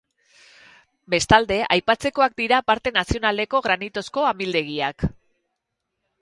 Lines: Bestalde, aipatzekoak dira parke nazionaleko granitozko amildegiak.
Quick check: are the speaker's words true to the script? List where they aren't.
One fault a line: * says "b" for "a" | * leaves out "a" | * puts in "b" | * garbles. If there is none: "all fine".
all fine